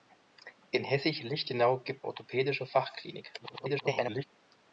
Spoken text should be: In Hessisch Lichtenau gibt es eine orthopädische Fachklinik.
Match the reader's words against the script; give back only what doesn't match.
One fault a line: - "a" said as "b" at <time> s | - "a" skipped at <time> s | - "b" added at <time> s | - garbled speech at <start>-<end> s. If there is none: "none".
- "es eine" skipped at 2.1 s
- garbled speech at 3.4-4.2 s